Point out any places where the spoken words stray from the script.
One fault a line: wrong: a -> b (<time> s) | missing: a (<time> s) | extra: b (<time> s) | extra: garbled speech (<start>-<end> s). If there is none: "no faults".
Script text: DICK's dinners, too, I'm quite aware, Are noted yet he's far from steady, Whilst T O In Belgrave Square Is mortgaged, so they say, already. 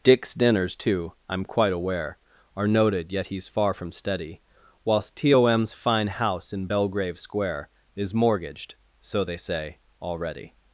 extra: M's fine house (5.5 s)